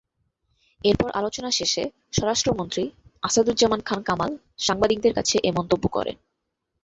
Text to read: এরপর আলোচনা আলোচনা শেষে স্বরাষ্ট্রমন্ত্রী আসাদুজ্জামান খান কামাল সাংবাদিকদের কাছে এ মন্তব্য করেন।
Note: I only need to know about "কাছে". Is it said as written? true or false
true